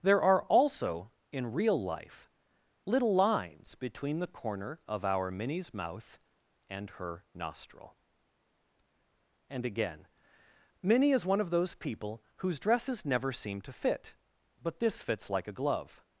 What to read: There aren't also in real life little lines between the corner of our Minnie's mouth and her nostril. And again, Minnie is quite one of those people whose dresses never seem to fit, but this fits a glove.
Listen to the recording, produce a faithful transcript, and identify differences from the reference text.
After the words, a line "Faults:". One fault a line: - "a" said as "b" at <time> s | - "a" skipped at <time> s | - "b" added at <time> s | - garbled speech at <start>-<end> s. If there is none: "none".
There are also in real life little lines between the corner of our Minnie's mouth and her nostril. And again, Minnie is one of those people whose dresses never seem to fit, but this fits like a glove.
Faults:
- "aren't" said as "are" at 0.2 s
- "quite" skipped at 11.3 s
- "like" added at 15.3 s